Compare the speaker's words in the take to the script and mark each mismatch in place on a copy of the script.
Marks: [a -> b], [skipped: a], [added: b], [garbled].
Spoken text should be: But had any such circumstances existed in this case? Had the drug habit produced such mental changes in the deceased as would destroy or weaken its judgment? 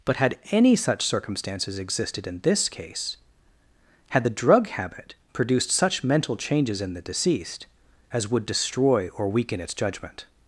But had any such circumstances existed in this case? Had the drug habit produced such mental changes in the deceased as would destroy or weaken its judgment?